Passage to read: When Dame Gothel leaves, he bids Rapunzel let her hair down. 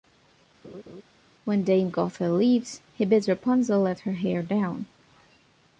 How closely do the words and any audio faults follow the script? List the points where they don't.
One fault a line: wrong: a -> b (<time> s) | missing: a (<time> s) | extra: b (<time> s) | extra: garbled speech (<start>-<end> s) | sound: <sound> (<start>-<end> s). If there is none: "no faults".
sound: laugh (0.6-1.0 s)